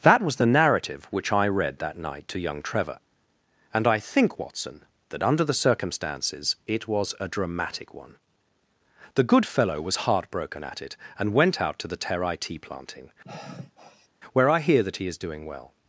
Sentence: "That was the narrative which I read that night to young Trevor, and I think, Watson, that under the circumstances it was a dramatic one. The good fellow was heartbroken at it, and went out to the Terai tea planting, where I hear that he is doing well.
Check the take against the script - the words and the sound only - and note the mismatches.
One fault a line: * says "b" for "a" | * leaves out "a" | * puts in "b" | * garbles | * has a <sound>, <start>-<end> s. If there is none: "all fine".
* has a sigh, 13.2-14.1 s